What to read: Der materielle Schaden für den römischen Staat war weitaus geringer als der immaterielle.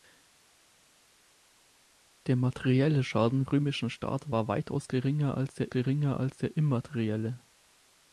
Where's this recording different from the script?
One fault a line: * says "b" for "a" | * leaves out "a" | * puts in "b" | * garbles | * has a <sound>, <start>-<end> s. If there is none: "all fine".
* leaves out "für den"
* puts in "geringer als der"